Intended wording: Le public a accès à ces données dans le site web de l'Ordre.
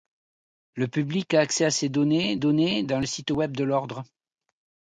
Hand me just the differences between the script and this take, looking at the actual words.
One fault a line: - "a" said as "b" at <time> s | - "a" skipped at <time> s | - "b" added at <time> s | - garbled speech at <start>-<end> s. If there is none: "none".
- "données" added at 2.3 s